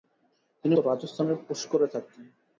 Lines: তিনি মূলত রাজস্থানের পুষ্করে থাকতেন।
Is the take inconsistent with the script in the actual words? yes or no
yes